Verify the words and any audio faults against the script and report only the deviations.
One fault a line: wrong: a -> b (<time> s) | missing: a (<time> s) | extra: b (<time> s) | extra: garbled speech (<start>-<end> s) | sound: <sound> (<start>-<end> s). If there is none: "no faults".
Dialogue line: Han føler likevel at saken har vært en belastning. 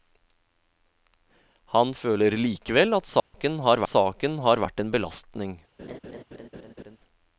sound: dropout (3.2-3.3 s)
extra: saken har (3.9 s)
sound: laugh (5.8-7.0 s)